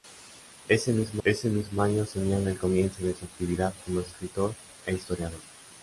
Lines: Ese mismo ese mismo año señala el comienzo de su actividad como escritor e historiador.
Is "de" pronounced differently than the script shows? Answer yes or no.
no